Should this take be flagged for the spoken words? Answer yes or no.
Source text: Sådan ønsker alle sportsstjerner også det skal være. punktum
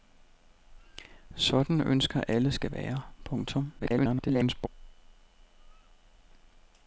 yes